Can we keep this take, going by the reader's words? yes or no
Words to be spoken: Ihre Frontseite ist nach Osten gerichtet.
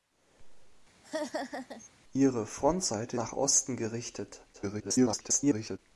no